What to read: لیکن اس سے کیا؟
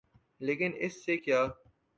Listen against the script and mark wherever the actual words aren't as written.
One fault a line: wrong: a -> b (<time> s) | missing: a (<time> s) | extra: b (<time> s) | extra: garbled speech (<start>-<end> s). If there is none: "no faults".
no faults